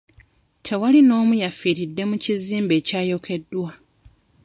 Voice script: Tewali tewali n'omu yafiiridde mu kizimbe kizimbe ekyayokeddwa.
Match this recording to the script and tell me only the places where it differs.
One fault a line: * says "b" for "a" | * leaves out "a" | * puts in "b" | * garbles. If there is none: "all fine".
* leaves out "tewali"
* leaves out "kizimbe"